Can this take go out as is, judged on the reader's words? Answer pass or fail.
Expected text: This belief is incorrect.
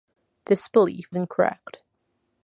fail